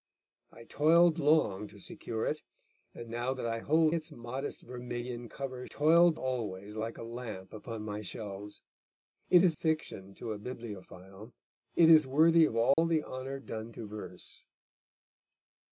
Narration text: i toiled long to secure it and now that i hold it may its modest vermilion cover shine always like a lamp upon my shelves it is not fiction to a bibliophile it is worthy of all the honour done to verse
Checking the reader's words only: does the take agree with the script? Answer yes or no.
no